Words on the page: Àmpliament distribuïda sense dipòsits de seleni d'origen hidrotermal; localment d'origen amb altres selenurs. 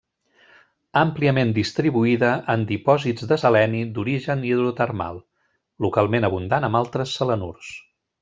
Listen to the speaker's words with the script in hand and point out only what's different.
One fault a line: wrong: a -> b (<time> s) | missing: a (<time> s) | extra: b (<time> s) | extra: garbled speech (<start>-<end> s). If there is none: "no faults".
wrong: sense -> en (2.5 s)
wrong: d'origen -> abundant (6.3 s)